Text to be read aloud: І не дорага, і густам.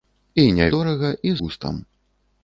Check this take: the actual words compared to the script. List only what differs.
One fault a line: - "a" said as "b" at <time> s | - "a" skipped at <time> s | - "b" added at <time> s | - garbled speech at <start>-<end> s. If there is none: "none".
none